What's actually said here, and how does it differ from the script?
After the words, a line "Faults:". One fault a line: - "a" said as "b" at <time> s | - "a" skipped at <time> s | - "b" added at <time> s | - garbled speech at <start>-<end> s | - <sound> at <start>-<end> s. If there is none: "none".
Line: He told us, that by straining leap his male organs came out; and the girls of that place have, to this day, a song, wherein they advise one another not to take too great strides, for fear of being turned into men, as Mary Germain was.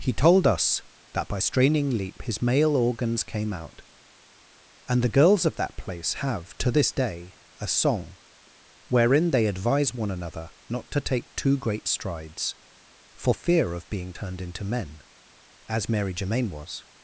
He told us, that by straining leap his male organs came out; and the girls of that place have, to this day, a song, wherein they advise one another not to take too great strides, for fear of being turned into men, as Mary Germain was.
Faults:
none